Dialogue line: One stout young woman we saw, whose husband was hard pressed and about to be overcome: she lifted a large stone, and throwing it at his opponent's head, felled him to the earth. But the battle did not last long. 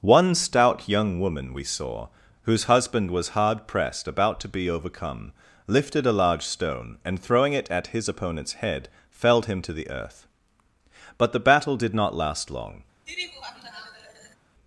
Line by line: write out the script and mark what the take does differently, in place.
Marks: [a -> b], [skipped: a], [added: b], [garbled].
One stout young woman we saw, whose husband was hard pressed [skipped: and] about to be overcome: [skipped: she] lifted a large stone, and throwing it at his opponent's head, felled him to the earth. But the battle did not last long.